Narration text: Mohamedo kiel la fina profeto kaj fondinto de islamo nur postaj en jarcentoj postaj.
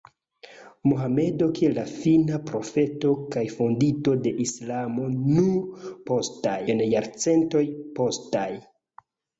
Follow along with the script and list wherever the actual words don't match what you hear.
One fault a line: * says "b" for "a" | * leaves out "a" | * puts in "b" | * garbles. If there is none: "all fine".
all fine